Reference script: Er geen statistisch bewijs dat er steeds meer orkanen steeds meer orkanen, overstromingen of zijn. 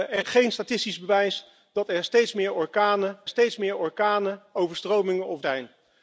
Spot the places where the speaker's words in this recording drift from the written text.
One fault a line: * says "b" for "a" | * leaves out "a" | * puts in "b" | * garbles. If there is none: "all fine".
all fine